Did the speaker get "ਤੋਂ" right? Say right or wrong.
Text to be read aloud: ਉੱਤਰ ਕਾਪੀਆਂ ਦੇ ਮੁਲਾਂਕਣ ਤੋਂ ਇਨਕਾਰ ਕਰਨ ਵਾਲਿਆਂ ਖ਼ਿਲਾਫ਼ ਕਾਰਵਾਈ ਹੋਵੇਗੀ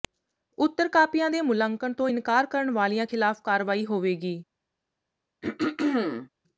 right